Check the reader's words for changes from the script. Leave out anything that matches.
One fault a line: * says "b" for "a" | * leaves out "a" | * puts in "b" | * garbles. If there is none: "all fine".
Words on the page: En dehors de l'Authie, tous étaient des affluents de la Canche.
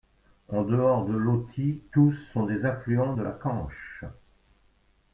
* says "sont" for "étaient"